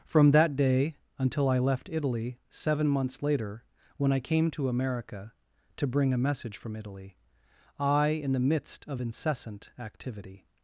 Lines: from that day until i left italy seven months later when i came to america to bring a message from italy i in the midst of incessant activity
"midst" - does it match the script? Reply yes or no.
yes